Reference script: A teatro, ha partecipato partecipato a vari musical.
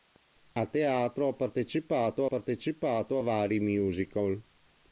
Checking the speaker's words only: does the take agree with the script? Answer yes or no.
yes